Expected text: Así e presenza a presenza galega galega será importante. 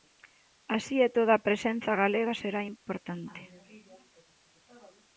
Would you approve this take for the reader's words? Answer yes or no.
no